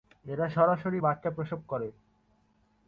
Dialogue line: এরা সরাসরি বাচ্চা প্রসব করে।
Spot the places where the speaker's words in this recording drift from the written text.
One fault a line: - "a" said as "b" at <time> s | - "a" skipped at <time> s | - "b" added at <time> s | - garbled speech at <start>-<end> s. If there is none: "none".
none